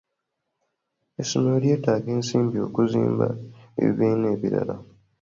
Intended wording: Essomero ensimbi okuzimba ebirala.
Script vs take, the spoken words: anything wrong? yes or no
yes